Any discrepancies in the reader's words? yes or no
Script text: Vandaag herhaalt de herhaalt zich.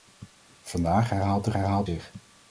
no